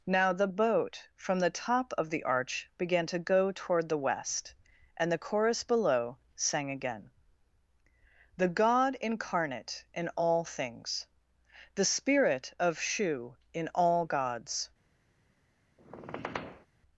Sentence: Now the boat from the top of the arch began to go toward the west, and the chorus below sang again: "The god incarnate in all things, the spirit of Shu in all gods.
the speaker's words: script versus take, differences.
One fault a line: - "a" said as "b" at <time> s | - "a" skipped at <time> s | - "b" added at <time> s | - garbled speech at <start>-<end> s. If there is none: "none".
none